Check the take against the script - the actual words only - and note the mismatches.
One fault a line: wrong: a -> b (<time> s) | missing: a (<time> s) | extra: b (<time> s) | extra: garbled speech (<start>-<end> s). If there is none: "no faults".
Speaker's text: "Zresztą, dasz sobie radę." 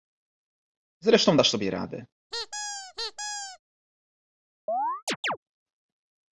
no faults